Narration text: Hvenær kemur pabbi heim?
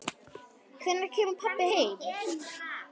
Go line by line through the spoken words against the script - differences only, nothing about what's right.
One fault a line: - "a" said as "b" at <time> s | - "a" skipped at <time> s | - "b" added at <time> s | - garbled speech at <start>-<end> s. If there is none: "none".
none